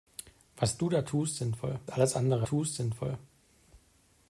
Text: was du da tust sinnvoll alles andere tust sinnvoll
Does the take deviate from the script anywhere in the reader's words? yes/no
no